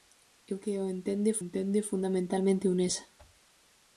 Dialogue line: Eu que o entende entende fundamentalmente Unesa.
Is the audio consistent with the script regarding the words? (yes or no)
yes